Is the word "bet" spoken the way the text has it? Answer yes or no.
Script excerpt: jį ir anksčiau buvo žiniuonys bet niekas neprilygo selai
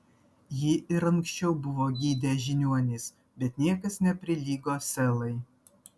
yes